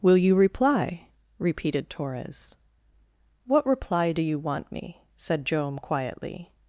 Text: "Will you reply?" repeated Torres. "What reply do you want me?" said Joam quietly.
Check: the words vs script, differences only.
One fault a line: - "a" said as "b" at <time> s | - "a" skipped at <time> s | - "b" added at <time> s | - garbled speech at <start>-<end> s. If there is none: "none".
none